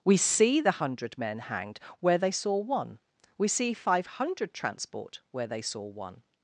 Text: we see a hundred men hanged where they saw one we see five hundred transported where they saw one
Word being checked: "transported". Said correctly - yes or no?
no